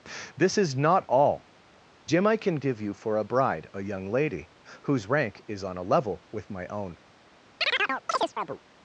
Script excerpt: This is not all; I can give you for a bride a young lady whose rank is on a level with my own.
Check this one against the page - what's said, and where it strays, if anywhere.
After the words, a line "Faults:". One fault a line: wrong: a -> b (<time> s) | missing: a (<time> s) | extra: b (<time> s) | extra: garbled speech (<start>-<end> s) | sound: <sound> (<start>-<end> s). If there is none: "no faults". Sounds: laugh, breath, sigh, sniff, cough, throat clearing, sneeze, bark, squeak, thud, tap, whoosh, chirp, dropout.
This is not all; jim I can give you for a bride a young lady whose rank is on a level with my own.
Faults:
extra: jim (2.0 s)
sound: chirp (7.6-8.6 s)